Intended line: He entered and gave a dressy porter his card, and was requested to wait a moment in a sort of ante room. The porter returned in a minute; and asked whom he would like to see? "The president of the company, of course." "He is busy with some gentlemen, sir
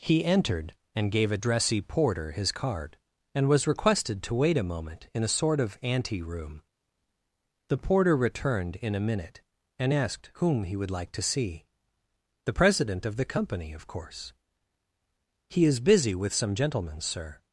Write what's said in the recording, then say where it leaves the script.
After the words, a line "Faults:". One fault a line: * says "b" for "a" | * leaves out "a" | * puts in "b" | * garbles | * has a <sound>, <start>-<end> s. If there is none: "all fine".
He entered and gave a dressy porter his card, and was requested to wait a moment in a sort of ante room. The porter returned in a minute; and asked whom he would like to see? "The president of the company, of course." "He is busy with some gentlemen, sir
Faults:
all fine